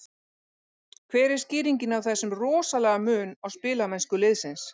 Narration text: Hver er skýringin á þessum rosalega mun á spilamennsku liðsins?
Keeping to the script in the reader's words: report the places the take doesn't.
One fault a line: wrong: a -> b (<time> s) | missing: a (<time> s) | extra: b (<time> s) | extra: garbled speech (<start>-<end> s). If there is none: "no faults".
no faults